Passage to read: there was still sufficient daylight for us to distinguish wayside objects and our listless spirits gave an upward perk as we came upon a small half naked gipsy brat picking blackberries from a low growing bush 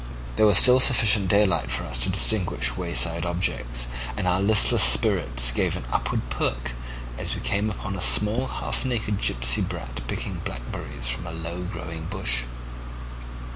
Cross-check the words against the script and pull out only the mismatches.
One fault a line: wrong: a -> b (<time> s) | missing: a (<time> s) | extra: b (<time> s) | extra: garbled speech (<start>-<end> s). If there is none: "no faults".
no faults